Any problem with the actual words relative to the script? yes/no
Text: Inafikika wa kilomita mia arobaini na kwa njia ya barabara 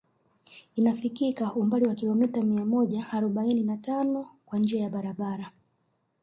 yes